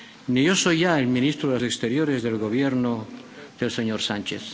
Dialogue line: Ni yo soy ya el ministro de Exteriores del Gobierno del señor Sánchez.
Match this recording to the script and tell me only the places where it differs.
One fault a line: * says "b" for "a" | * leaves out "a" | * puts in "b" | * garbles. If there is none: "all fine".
all fine